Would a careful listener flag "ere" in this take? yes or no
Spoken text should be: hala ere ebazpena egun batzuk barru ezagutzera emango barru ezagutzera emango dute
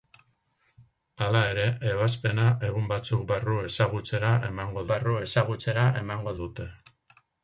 no